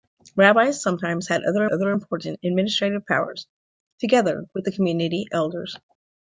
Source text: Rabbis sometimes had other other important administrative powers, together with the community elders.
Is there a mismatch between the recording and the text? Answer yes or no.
no